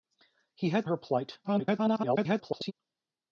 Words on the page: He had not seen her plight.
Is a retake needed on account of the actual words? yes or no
yes